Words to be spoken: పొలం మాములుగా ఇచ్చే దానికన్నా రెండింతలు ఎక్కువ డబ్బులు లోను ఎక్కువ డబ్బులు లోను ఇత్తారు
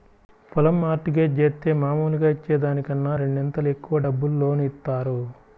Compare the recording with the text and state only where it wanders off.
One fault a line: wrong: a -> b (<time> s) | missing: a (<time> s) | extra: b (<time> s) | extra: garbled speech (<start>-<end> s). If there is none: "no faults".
extra: మార్ట్ గేజ్ జేత్తే (0.8 s)
missing: ఎక్కువ డబ్బులు లోను (4.6 s)